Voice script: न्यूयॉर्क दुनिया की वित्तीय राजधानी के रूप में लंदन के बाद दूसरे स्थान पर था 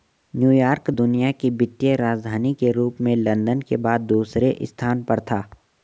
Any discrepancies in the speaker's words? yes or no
no